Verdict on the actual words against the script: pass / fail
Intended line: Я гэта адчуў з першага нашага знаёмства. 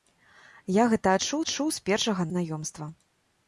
fail